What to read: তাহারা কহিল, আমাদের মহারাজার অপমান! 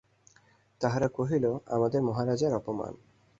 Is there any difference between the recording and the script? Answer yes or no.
no